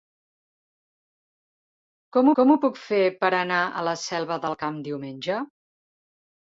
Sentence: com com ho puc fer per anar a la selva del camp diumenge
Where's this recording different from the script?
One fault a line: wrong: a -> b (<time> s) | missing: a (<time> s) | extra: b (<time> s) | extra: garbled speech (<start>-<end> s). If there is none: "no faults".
no faults